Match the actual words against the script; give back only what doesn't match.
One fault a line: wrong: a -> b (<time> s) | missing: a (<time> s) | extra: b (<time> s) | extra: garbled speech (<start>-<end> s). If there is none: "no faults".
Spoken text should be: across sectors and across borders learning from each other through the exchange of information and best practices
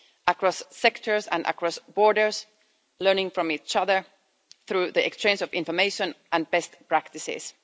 no faults